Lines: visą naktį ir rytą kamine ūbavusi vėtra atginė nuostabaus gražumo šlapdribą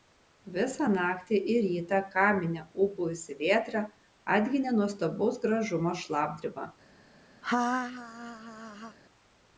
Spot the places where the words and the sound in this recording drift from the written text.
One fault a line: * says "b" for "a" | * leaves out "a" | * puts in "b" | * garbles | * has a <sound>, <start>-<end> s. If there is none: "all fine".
* has a laugh, 7.4-9.0 s